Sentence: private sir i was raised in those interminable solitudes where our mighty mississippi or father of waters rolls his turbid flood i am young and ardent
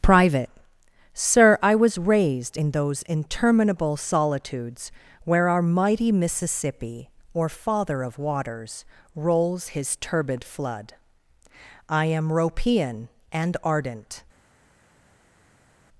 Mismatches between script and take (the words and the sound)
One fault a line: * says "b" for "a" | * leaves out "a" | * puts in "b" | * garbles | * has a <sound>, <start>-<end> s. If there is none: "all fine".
* says "ropean" for "young"